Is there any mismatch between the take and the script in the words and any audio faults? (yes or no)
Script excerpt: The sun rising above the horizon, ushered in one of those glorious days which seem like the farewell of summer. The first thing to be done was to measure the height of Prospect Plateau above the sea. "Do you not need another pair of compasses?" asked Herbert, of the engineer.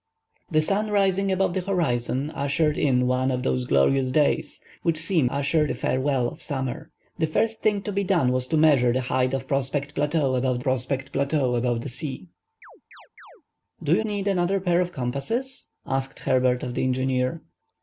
yes